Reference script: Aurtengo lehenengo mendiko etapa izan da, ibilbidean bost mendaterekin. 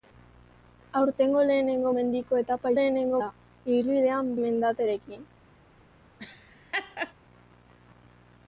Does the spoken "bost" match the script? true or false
false